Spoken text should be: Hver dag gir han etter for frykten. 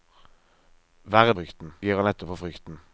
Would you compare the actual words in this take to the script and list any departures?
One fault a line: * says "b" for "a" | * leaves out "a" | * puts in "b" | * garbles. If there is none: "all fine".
* says "frykten" for "dag"